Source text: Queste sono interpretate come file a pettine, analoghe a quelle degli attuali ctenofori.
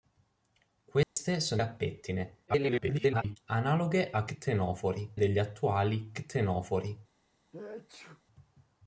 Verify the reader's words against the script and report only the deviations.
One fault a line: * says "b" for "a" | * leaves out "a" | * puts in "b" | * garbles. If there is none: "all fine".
* leaves out "interpretate come file"
* garbles
* says "ctenofori" for "quelle"